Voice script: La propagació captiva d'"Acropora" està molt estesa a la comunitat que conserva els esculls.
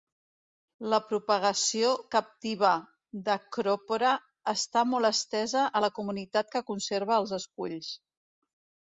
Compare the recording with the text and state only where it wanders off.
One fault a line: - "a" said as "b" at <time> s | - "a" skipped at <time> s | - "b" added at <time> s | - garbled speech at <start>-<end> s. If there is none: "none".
none